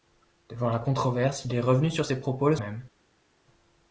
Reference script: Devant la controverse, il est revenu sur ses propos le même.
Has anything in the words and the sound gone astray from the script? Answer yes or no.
no